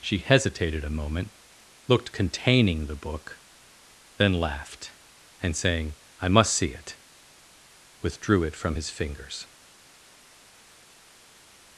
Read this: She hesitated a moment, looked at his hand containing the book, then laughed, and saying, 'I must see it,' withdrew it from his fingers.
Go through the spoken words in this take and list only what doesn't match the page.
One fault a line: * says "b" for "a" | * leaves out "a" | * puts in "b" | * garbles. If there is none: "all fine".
* leaves out "at his hand"